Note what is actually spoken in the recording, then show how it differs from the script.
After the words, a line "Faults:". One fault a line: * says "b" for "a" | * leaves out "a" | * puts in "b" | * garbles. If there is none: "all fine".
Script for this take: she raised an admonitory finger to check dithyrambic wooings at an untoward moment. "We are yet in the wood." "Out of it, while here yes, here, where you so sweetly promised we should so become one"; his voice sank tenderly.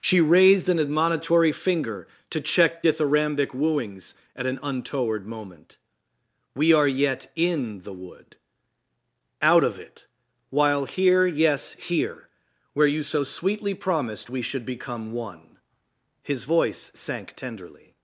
she raised an admonitory finger to check dithyrambic wooings at an untoward moment. "We are yet in the wood." "Out of it, while here yes, here, where you so sweetly promised we should become one"; his voice sank tenderly.
Faults:
* leaves out "so"